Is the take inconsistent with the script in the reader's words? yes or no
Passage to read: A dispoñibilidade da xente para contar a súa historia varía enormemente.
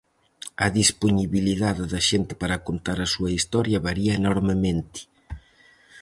no